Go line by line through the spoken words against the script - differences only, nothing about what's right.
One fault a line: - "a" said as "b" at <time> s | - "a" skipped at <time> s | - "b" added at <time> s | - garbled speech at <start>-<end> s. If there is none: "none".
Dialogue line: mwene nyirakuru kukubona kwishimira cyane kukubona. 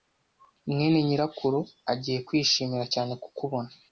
- "kukubona" said as "agiye" at 1.9 s